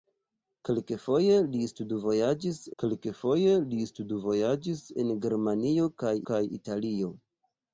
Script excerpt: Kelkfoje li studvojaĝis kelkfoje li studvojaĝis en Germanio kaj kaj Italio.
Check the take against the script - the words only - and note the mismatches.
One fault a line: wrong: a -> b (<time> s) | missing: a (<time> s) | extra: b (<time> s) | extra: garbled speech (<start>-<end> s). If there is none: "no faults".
no faults